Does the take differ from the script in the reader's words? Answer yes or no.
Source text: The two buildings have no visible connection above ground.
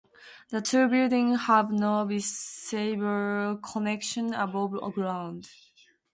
no